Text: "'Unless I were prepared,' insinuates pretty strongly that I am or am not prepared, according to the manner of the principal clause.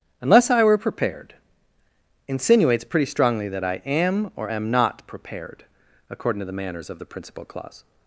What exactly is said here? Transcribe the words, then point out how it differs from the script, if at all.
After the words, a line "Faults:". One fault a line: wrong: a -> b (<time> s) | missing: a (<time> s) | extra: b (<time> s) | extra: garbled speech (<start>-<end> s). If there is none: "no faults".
"'Unless I were prepared,' insinuates pretty strongly that I am or am not prepared, according to the manners of the principal clause.
Faults:
wrong: manner -> manners (6.5 s)